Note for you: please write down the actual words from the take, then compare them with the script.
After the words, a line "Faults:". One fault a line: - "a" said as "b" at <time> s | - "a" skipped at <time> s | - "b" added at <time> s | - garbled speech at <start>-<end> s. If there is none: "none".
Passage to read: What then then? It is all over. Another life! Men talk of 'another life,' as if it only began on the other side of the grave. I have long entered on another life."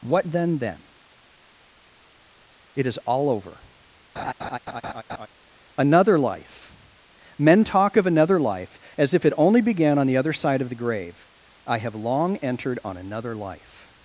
What then then? It is all over. Another life! Men talk of 'another life,' as if it only began on the other side of the grave. I have long entered on another life."
Faults:
none